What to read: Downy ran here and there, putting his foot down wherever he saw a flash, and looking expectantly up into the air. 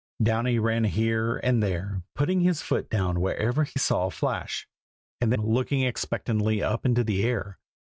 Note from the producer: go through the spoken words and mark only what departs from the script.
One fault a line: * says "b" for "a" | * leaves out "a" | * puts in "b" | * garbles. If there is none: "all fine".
all fine